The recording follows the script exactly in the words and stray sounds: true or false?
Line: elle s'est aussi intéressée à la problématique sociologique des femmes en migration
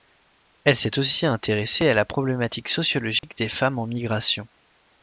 false